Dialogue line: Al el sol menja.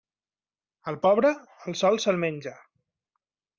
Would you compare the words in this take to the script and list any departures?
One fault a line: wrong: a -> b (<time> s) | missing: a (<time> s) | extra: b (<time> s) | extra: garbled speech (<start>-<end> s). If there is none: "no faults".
extra: pobre (1.1 s)
extra: se'l (2.1 s)